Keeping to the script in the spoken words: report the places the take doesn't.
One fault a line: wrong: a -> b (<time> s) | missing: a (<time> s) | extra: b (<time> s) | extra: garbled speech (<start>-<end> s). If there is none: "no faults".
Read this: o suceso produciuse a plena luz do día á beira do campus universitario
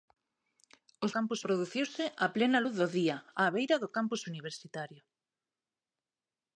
wrong: suceso -> campus (1.1 s)